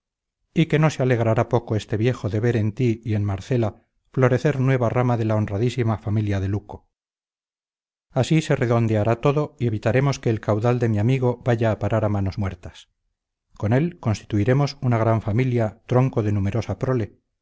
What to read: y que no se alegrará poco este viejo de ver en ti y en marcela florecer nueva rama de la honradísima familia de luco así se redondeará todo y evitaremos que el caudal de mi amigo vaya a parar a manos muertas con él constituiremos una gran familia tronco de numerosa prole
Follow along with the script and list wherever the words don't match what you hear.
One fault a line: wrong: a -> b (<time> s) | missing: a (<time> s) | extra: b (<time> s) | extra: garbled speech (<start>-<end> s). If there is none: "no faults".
no faults